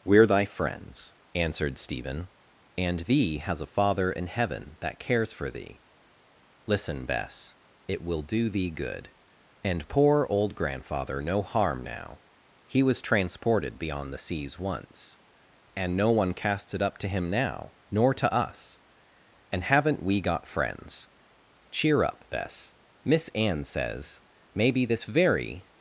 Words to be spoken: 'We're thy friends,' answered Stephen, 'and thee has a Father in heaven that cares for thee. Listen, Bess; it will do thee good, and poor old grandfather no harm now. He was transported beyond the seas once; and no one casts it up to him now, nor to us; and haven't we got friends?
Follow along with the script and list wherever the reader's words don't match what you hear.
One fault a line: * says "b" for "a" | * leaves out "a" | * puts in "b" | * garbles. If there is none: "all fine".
* puts in "Cheer up Bess Miss Anne says maybe this very"